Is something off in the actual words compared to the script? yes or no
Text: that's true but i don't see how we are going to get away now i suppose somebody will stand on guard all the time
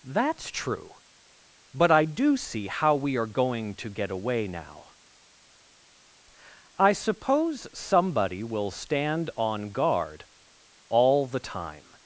yes